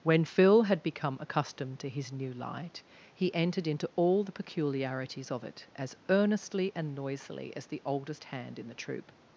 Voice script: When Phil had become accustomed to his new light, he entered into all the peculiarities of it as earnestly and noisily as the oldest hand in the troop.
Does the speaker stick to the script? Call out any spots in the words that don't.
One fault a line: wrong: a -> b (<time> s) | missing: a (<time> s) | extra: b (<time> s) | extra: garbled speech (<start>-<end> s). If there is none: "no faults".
no faults